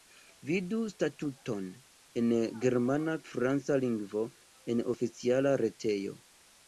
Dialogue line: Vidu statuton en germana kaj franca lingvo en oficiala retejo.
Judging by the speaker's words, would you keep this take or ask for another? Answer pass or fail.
fail